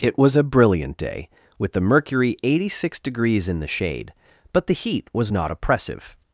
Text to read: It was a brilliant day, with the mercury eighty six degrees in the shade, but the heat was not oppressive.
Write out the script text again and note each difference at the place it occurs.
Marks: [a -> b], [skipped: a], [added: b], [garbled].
It was a brilliant day, with the mercury eighty six degrees in the shade, but the heat was not oppressive.